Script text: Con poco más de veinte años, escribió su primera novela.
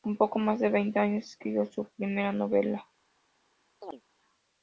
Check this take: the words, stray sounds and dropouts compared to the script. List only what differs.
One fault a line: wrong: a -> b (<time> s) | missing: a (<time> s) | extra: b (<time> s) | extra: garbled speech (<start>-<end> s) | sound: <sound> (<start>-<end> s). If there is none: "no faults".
sound: chirp (3.8-4.0 s)